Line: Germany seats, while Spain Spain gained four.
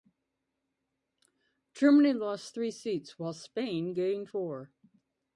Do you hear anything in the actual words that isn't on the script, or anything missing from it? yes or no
yes